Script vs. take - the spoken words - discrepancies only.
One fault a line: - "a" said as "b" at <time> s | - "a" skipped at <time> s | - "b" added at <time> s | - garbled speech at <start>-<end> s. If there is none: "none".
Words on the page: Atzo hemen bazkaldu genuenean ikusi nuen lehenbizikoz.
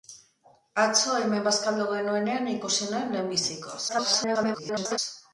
- garbled speech at 3.9-5.0 s